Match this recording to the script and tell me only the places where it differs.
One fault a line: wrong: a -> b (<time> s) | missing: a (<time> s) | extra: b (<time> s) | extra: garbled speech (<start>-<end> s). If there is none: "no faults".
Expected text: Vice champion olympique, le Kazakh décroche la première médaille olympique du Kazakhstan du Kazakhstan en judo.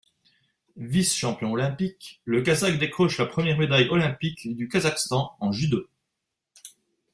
missing: du Kazakhstan (5.3 s)